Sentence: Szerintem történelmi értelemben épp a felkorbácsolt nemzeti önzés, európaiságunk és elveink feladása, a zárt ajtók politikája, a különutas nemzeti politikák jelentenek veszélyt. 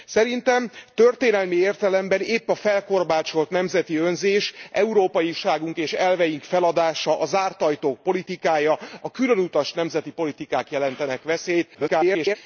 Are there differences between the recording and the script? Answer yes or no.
yes